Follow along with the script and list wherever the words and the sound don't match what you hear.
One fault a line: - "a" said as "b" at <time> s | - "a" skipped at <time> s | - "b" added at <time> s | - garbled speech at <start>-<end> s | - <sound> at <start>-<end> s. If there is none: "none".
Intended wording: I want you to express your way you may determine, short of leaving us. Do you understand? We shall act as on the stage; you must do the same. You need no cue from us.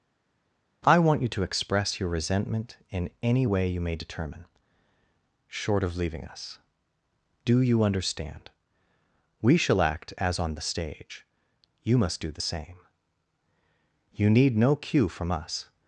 - "resentment in any" added at 2.1 s